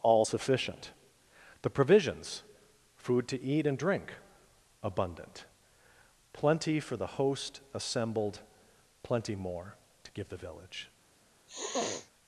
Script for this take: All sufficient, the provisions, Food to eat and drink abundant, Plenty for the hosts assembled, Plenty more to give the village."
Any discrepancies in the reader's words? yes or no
yes